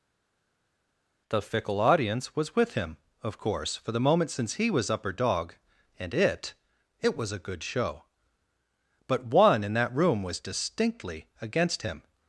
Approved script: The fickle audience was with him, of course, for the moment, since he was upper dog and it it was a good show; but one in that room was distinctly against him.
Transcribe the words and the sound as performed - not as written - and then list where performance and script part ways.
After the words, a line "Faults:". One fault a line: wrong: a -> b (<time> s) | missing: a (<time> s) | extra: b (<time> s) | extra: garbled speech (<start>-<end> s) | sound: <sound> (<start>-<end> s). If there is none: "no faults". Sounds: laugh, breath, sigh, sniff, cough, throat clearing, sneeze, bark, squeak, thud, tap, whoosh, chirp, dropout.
The fickle audience was with him, of course, for the moment, since he was upper dog and it it was a good show; but one in that room was distinctly against him.
Faults:
no faults